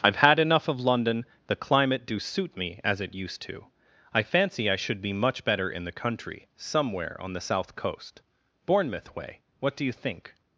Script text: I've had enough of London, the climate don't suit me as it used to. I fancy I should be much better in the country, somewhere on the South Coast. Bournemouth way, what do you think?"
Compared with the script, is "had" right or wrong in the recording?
right